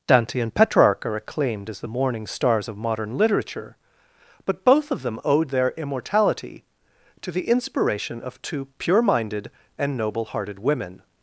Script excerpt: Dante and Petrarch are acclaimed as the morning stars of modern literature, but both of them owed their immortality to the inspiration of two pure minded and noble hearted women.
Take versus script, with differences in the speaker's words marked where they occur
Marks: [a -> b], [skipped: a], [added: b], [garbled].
Dante and Petrarch are acclaimed as the morning stars of modern literature, but both of them owed their immortality to the inspiration of two pure minded and noble hearted women.